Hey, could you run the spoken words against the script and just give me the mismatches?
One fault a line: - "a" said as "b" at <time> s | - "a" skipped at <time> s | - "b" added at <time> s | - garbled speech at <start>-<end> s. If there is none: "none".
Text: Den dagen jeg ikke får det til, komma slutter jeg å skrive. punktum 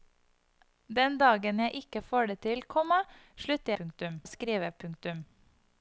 - "jeg" said as "punktum" at 3.8 s